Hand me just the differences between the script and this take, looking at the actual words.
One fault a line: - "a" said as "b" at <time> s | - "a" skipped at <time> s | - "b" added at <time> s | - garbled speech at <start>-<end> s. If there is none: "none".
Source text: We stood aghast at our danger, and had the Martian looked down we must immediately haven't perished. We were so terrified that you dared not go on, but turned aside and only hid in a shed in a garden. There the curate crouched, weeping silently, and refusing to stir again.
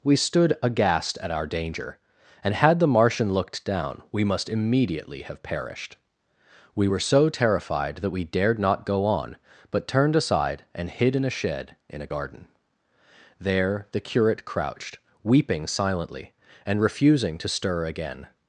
- "haven't" said as "have" at 5.2 s
- "you" said as "we" at 8.1 s
- "only" skipped at 10.9 s